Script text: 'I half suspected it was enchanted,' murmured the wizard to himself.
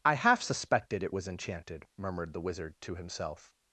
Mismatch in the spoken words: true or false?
false